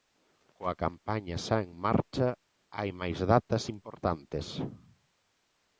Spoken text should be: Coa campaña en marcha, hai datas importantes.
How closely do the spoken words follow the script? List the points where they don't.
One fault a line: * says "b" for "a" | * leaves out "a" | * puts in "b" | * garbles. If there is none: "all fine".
* puts in "xa"
* puts in "máis"